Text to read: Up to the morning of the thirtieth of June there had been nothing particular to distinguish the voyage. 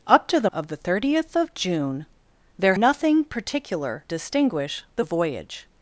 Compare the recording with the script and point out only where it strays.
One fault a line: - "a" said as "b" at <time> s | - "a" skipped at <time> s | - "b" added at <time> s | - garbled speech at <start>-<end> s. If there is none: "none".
- "morning" skipped at 0.5 s
- "had been" skipped at 2.7 s
- "to" skipped at 4.0 s